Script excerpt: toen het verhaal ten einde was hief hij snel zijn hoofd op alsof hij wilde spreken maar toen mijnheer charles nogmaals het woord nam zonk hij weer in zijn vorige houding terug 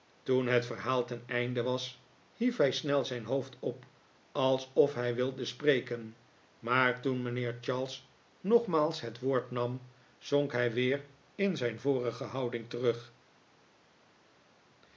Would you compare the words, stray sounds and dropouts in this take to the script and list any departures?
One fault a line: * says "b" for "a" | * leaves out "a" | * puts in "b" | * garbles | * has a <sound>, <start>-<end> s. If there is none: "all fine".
all fine